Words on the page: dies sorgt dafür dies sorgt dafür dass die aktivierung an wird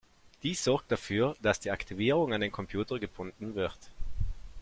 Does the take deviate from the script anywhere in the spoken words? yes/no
yes